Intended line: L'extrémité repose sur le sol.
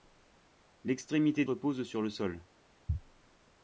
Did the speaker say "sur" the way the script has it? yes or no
yes